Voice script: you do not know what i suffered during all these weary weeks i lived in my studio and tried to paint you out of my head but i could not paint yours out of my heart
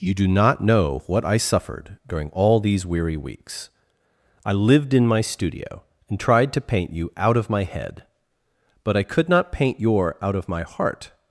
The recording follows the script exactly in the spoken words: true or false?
false